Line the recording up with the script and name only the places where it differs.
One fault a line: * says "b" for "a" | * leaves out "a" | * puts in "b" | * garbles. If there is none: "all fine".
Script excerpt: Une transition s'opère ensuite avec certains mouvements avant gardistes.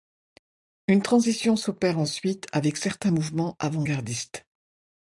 all fine